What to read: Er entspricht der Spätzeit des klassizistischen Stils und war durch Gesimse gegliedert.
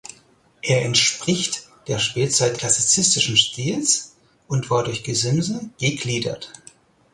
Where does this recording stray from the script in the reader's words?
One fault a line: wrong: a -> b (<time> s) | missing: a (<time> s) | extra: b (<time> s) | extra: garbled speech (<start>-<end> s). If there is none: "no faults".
missing: des (2.6 s)